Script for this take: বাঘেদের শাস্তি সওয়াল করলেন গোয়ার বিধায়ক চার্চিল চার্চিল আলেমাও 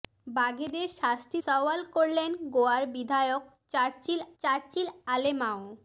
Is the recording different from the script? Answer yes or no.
no